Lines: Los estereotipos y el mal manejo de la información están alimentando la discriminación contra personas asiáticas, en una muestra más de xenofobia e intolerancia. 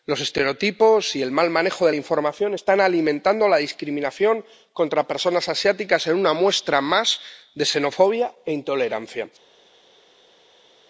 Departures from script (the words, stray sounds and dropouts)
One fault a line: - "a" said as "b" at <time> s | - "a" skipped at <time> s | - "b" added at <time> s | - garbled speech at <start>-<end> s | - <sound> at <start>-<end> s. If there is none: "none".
none